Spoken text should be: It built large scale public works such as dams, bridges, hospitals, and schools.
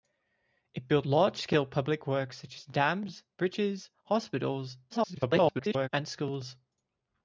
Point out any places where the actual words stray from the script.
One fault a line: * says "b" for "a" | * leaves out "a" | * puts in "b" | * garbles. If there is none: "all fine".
* garbles